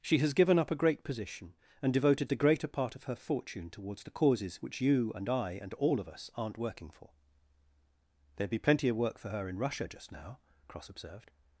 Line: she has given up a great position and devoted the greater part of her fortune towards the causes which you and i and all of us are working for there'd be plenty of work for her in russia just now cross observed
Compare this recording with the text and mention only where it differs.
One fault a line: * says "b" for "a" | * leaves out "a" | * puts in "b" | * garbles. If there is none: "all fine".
* says "aren't" for "are"